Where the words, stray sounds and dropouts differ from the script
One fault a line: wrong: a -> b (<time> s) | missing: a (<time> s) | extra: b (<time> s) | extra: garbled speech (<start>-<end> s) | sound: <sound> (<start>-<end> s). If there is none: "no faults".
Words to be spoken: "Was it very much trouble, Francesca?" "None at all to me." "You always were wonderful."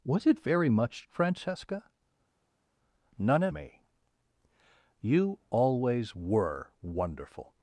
missing: trouble (1.1 s)
missing: all to (3.5 s)